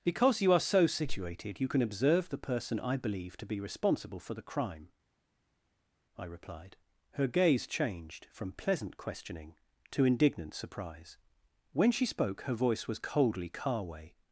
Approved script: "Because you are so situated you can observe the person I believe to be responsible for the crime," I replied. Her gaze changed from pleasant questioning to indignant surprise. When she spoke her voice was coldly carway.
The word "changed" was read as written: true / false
true